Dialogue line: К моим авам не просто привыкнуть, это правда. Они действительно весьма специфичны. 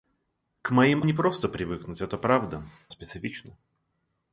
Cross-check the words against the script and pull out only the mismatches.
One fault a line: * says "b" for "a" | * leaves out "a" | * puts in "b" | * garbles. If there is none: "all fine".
* leaves out "авам"
* leaves out "Они действительно весьма"